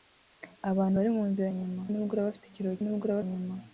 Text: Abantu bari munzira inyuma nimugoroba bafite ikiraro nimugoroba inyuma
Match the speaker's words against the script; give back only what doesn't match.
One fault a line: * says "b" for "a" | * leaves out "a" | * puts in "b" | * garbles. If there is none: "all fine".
all fine